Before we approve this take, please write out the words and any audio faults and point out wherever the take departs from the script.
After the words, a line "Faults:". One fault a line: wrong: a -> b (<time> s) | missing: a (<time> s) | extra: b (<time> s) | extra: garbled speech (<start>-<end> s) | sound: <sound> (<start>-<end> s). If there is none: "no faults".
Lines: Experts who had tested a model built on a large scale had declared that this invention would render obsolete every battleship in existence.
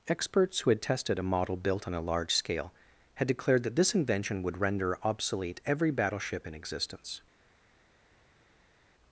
Experts who had tested a model built on a large scale had declared that this invention would render obsolete every battleship in existence.
Faults:
no faults